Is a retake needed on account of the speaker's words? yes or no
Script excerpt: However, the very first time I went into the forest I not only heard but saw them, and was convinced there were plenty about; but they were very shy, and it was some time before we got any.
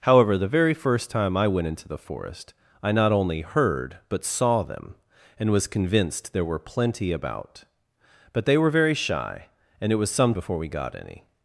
yes